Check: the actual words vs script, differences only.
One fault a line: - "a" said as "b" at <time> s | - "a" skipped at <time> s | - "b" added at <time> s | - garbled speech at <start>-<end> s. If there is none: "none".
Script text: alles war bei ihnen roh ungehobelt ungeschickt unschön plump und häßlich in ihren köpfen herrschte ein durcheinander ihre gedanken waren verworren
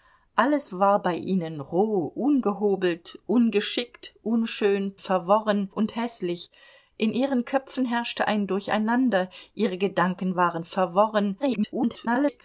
- "plump" said as "verworren" at 5.0 s
- garbled speech at 11.4-12.4 s